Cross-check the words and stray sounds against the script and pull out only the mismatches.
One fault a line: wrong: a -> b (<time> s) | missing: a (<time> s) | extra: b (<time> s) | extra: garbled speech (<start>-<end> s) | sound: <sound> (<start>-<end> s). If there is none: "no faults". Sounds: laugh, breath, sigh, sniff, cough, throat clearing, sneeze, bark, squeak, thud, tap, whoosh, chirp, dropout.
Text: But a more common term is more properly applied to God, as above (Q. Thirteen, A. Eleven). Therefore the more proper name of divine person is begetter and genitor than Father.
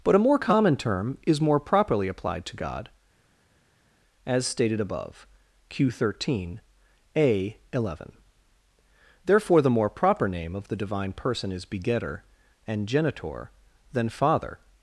extra: stated (4.5 s)
extra: the (10.7 s)